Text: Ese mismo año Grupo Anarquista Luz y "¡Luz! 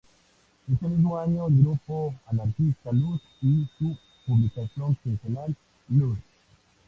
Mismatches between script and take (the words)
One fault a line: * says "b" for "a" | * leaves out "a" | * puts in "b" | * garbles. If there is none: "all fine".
* puts in "el"
* puts in "su publicación quincenal"